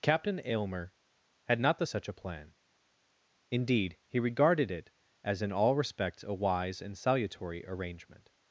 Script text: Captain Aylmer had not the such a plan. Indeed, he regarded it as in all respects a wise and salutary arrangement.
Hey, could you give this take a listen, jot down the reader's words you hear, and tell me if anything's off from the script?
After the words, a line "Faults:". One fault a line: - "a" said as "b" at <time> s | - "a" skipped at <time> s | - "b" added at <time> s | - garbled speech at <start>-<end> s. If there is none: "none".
Captain Aylmer had not the such a plan. Indeed, he regarded it as in all respects a wise and salutary arrangement.
Faults:
none